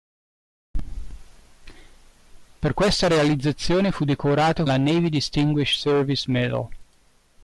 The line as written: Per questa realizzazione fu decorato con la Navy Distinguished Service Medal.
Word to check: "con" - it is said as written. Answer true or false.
false